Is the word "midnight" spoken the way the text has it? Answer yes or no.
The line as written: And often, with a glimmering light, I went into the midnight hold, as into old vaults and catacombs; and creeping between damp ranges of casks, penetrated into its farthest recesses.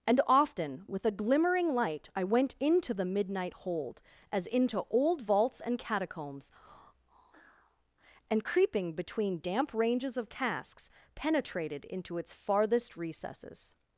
yes